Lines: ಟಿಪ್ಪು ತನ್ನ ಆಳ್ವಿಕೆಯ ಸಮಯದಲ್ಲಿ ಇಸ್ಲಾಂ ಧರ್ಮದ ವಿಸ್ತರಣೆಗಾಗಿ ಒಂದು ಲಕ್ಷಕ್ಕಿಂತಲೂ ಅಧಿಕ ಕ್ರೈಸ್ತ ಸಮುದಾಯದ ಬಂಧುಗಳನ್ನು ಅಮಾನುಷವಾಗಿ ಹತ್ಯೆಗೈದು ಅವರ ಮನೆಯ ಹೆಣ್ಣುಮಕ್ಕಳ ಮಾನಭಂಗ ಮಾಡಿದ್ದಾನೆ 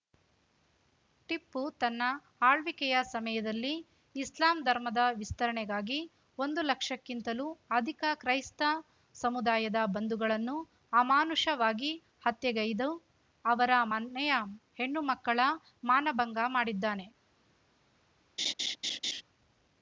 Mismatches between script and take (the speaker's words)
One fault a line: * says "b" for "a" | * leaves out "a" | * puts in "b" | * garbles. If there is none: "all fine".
all fine